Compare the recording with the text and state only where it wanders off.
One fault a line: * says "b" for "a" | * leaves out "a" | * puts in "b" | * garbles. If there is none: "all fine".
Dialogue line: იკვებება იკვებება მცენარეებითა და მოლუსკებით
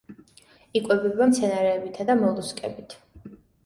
* leaves out "იკვებება"